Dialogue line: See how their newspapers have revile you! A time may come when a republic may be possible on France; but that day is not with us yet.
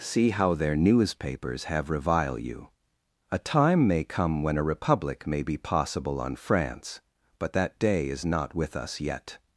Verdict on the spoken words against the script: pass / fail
pass